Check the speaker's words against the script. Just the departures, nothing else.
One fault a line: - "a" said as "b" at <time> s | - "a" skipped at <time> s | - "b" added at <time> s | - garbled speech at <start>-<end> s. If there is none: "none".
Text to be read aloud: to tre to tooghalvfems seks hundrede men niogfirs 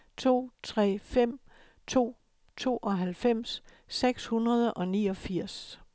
- "fem" added at 1.0 s
- "men" said as "og" at 4.7 s